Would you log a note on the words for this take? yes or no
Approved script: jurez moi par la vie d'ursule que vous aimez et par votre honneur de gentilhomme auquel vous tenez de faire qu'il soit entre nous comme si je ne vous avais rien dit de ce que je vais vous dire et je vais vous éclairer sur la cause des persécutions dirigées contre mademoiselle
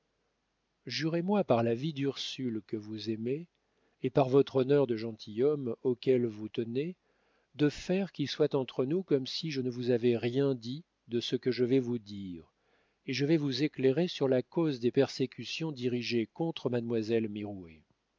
no